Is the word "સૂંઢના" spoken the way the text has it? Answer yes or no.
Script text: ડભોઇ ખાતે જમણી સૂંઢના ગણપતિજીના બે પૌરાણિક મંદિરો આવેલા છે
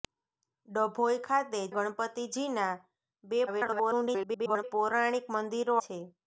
no